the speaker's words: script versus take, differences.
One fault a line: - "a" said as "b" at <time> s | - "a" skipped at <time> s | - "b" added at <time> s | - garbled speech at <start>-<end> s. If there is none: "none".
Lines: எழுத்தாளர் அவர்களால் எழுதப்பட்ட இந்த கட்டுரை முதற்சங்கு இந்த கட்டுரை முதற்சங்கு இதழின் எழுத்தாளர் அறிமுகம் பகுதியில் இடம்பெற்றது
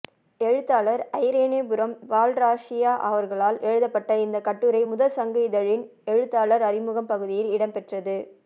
- "ஐரேனிபுரம் பால்ராசய்யா" added at 1.2 s
- "இந்த கட்டுரை முதற்சங்கு" skipped at 5.4 s